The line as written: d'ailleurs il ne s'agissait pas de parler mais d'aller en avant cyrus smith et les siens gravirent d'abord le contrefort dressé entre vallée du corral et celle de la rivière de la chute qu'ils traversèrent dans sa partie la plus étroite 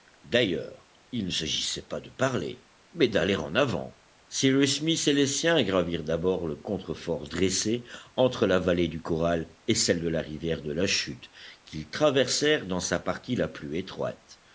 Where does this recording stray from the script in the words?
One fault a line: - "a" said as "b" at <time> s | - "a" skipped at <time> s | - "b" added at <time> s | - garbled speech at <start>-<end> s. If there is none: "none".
- "la" added at 8.5 s